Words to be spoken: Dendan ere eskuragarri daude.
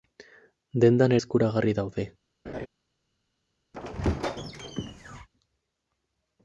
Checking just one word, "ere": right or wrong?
wrong